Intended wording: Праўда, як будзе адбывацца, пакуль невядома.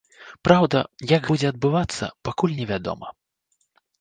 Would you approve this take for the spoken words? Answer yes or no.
yes